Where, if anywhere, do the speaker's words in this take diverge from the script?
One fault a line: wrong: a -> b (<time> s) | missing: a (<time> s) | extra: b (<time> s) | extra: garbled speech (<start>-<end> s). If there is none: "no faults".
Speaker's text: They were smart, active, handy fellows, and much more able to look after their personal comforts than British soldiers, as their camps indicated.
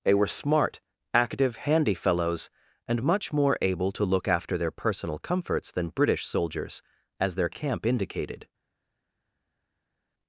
wrong: camps -> camp (7.5 s)